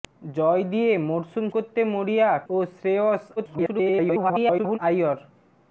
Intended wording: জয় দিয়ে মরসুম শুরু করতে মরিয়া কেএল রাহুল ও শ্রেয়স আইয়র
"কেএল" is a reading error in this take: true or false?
true